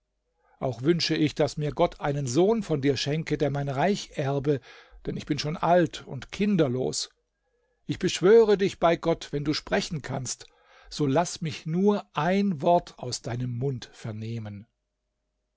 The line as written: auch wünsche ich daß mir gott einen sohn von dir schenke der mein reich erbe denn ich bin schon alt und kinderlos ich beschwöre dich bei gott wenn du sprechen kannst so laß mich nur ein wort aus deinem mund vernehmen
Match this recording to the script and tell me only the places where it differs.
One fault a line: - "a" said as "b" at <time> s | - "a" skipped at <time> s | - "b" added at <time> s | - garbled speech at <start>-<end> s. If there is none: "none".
none